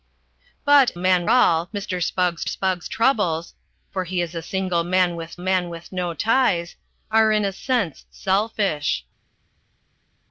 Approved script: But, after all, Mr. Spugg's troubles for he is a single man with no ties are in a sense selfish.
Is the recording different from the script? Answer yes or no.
yes